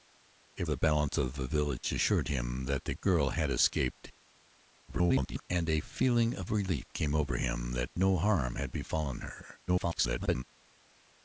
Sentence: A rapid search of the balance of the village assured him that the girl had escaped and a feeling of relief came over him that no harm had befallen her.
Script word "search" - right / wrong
wrong